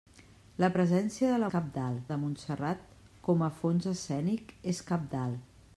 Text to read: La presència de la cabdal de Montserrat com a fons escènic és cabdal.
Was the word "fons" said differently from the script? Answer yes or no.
no